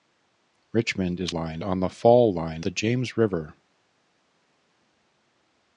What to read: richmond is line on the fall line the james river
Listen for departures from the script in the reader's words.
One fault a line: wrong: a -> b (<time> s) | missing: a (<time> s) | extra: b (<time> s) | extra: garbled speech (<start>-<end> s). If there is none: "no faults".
no faults